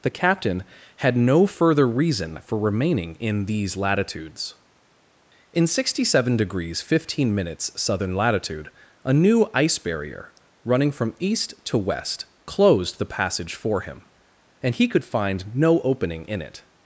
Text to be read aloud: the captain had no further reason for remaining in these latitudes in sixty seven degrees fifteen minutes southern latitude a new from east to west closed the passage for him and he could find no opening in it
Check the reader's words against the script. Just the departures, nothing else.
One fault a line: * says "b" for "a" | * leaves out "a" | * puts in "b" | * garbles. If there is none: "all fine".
* puts in "ice barrier running"